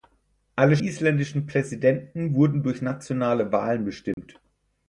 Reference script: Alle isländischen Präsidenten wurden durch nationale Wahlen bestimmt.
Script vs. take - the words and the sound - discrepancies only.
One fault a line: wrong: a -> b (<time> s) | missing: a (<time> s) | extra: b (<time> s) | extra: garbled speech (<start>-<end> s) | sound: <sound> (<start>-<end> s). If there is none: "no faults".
sound: dropout (4.1-4.2 s)